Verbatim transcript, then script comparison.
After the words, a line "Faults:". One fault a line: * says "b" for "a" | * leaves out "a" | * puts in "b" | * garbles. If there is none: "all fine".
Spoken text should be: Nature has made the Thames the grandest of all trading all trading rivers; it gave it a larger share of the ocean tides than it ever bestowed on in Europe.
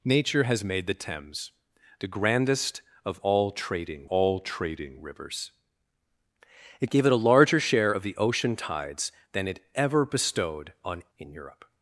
Nature has made the Thames the grandest of all trading all trading rivers; it gave it a larger share of the ocean tides than it ever bestowed on in Europe.
Faults:
all fine